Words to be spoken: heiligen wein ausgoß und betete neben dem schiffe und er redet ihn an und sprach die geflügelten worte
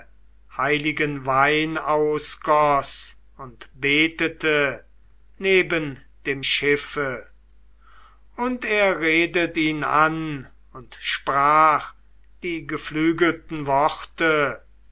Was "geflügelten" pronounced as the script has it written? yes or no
yes